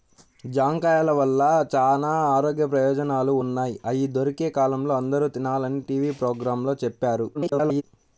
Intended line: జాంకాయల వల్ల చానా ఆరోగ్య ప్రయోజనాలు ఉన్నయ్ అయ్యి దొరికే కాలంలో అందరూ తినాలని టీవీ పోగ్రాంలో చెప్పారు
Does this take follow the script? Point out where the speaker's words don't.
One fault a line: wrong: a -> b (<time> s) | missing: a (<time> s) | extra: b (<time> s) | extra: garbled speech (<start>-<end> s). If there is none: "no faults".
extra: garbled speech (7.3-7.8 s)